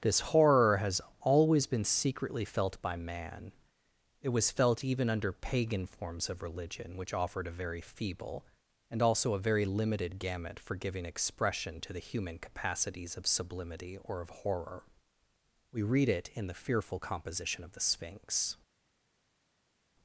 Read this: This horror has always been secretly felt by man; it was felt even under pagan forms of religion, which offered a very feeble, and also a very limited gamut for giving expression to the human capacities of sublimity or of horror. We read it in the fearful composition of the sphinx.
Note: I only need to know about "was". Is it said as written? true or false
true